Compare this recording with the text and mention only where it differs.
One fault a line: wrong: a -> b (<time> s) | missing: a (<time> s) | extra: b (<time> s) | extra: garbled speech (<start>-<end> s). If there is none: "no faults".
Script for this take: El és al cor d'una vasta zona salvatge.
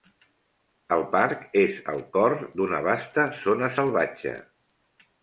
extra: parc (1.1 s)